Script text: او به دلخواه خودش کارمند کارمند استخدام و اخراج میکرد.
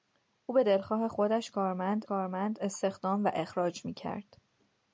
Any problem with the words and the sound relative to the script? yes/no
no